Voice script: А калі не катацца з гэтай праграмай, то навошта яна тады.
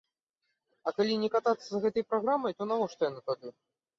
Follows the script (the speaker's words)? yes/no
yes